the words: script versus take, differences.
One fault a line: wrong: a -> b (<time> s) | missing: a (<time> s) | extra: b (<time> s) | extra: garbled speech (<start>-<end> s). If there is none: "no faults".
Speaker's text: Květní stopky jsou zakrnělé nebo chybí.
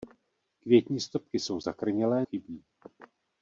missing: nebo (2.3 s)